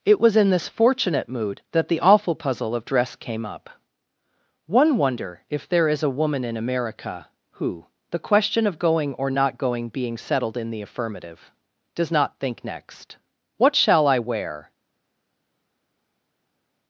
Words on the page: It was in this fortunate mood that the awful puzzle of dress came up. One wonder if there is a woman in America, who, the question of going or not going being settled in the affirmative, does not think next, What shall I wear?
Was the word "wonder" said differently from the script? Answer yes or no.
no